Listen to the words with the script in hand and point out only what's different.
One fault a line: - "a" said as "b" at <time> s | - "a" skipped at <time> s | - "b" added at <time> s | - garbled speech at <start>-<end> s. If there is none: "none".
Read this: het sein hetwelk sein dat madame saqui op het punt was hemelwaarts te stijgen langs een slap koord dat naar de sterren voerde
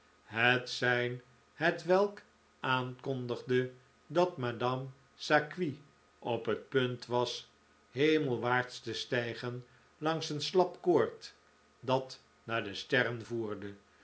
- "sein" said as "aankondigde" at 2.6 s